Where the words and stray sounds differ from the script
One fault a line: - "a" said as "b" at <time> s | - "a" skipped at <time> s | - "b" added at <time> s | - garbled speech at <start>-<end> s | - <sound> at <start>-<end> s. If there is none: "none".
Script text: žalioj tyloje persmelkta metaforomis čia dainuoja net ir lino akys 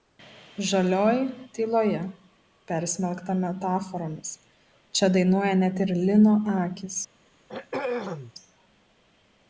- throat clearing at 7.5-8.3 s